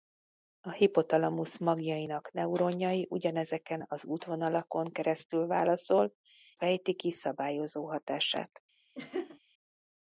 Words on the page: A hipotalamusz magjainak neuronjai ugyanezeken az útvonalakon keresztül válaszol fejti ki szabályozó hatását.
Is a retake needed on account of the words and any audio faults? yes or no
yes